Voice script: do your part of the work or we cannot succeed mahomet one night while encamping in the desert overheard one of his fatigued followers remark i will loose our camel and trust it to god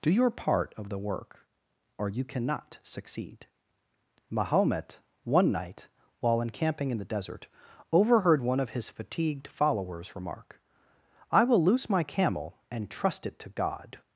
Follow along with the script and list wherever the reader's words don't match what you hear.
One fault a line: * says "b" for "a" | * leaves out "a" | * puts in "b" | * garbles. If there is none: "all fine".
* says "you" for "we"
* says "my" for "our"